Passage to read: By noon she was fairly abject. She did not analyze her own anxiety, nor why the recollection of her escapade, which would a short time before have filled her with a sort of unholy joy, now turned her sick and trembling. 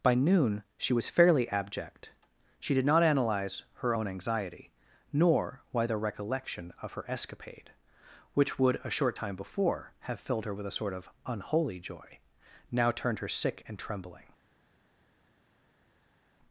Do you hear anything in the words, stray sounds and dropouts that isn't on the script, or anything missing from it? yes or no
no